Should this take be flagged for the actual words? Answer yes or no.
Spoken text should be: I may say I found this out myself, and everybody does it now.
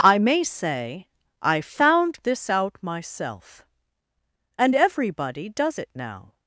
no